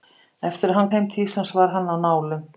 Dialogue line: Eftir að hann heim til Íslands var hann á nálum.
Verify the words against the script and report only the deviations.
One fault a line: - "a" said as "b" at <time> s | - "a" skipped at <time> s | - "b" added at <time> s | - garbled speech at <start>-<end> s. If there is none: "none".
none